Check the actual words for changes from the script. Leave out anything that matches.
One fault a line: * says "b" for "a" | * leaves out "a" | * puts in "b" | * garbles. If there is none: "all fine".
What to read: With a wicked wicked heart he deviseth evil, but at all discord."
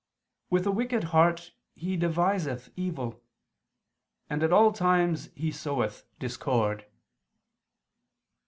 * leaves out "wicked"
* says "and" for "but"
* puts in "times he soweth"